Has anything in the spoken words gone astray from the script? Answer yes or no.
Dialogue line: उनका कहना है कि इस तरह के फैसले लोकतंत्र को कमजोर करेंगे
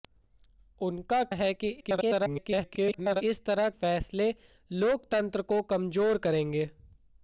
yes